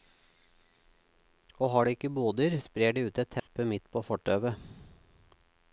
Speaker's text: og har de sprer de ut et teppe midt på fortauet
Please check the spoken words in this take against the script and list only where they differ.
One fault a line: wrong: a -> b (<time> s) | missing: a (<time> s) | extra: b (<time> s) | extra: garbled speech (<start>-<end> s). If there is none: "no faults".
extra: ikke boder (1.9 s)